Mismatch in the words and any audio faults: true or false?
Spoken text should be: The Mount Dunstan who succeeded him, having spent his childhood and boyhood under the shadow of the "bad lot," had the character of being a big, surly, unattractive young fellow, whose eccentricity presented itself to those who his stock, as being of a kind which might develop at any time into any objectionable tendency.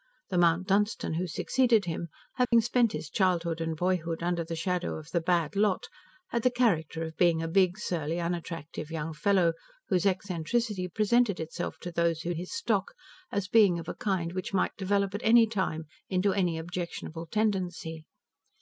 true